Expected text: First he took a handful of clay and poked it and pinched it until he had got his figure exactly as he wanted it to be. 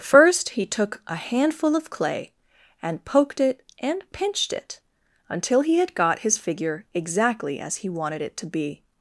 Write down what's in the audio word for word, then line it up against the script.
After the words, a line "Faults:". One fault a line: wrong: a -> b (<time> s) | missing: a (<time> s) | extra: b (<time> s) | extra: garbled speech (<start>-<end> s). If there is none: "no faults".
First he took a handful of clay and poked it and pinched it until he had got his figure exactly as he wanted it to be.
Faults:
no faults